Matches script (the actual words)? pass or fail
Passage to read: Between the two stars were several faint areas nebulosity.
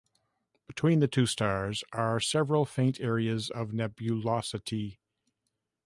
fail